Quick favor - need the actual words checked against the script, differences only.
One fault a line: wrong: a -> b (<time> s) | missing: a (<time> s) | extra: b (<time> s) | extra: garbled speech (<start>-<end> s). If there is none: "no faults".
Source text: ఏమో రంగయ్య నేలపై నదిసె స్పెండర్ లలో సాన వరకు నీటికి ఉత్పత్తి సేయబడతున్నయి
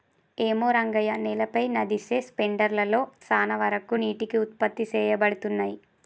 no faults